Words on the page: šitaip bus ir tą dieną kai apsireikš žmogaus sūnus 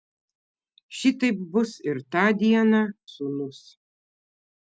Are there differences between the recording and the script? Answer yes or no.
yes